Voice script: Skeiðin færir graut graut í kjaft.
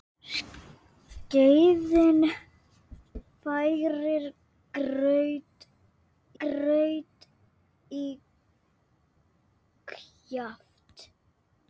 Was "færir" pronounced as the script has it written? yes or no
yes